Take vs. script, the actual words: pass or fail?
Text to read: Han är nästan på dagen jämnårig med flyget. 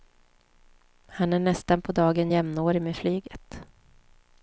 pass